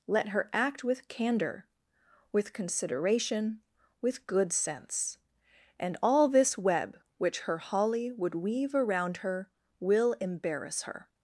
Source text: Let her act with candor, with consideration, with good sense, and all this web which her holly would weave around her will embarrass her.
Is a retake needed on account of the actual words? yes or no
no